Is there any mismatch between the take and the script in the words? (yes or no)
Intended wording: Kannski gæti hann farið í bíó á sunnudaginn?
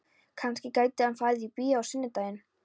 no